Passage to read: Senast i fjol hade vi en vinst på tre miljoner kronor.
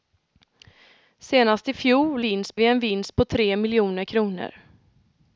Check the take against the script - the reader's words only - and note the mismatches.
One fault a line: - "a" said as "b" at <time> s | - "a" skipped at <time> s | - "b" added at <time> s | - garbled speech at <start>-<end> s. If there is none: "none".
- "hade" said as "vinst" at 2.2 s